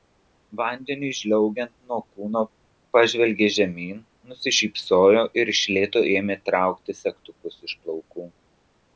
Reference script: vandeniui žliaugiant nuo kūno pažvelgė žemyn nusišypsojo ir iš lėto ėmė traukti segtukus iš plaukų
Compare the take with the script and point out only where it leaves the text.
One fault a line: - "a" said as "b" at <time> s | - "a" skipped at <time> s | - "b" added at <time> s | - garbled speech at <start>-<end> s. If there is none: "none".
none